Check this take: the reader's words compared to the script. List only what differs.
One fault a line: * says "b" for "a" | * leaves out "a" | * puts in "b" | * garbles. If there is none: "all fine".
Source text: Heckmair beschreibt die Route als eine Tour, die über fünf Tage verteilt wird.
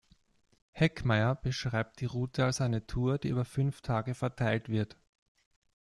all fine